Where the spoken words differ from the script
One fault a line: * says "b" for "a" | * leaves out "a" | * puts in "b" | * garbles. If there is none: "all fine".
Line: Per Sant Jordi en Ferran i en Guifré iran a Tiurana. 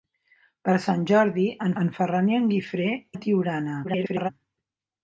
* puts in "en"
* leaves out "iran"
* garbles